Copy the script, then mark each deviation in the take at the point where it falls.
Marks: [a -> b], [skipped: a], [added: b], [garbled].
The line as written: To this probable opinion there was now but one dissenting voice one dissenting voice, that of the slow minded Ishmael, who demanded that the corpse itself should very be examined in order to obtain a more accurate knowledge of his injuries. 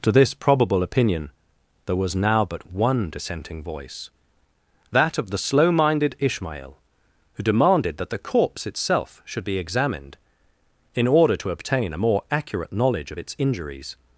To this probable opinion there was now but one dissenting voice [skipped: one dissenting voice,] that of the slow minded Ishmael, who demanded that the corpse itself should [skipped: very] be examined in order to obtain a more accurate knowledge of [his -> its] injuries.